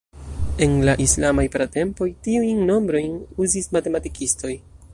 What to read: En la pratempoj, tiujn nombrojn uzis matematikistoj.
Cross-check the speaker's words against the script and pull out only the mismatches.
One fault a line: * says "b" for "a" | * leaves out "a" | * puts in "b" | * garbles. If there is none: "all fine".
* puts in "islamaj"